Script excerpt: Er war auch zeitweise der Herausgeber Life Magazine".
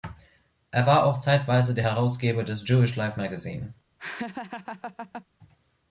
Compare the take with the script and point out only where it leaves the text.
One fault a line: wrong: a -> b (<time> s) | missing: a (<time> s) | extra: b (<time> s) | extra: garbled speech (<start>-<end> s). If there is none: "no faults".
extra: des Jewish (2.4 s)